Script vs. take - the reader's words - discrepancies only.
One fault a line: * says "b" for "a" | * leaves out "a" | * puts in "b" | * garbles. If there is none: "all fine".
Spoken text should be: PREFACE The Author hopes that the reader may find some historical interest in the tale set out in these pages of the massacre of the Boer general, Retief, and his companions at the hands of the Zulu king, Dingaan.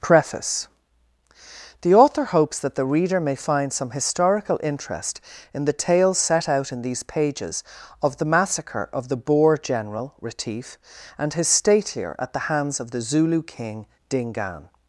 * says "statelier" for "companions"